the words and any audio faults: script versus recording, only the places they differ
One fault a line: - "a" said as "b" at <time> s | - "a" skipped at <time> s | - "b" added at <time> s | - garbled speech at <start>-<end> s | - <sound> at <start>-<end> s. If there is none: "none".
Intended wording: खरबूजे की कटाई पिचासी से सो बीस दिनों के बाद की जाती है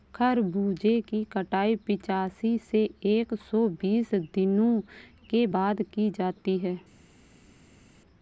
- "एक" added at 3.0 s